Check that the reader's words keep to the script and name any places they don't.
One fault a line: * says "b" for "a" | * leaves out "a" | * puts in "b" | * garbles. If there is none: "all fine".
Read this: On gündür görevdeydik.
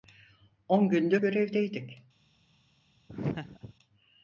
all fine